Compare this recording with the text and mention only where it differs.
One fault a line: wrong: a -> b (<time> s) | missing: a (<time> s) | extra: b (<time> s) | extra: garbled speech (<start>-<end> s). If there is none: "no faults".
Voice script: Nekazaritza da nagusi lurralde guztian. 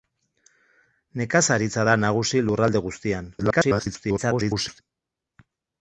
extra: garbled speech (3.4-4.8 s)